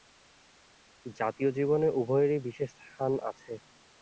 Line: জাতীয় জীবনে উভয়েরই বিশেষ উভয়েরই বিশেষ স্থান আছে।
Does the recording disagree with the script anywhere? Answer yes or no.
yes